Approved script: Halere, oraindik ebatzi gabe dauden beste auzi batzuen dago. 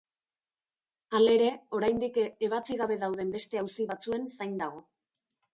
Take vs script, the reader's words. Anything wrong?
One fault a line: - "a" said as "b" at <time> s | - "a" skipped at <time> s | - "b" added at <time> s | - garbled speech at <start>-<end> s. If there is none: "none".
- "zain" added at 4.4 s